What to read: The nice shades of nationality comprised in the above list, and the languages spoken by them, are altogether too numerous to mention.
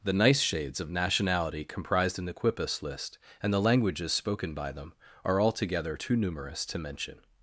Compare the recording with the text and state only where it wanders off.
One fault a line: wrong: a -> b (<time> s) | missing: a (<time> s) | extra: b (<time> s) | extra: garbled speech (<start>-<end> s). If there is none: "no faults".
wrong: above -> quipus (2.3 s)